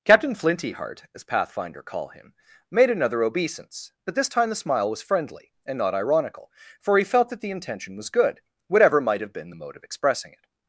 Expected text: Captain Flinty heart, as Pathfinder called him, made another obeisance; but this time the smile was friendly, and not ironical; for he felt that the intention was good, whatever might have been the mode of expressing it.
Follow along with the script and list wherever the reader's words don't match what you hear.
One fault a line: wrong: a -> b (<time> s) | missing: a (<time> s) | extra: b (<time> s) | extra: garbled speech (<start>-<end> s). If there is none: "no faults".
wrong: called -> call (1.8 s)